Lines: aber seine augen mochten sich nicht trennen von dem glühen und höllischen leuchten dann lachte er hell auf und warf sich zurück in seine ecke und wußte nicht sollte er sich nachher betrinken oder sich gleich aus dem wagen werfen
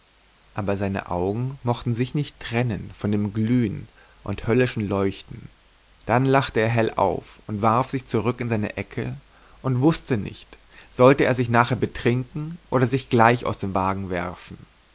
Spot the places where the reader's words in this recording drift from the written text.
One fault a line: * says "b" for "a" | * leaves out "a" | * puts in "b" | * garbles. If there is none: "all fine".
all fine